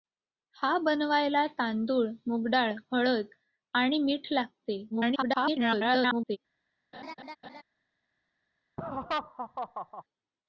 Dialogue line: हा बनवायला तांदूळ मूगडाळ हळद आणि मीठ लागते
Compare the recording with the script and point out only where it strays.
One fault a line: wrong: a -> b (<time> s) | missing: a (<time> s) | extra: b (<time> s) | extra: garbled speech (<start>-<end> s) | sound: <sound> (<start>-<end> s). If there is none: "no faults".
extra: garbled speech (4.9-6.4 s)
sound: laugh (6.9-7.6 s)
sound: laugh (8.8-10.0 s)